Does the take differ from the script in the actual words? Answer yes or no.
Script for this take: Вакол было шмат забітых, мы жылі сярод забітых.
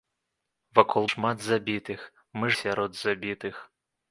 yes